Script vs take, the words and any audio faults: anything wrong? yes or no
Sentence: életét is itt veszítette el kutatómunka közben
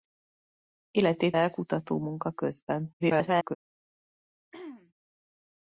yes